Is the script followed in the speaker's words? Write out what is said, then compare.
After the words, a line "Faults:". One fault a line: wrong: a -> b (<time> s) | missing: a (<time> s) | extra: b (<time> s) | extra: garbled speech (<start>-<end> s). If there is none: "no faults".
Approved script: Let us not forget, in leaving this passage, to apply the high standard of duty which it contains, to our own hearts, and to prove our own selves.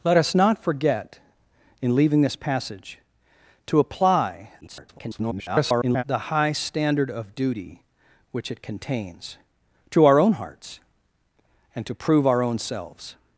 Let us not forget, in leaving this passage, to apply [garbled] the high standard of duty which it contains, to our own hearts, and to prove our own selves.
Faults:
extra: garbled speech (4.6-6.0 s)